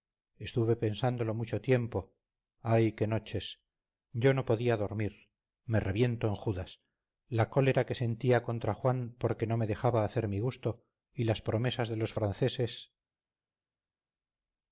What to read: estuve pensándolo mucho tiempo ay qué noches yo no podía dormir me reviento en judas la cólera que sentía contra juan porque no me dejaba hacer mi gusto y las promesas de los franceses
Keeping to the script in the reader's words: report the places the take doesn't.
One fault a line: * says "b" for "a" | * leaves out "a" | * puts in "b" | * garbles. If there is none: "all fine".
all fine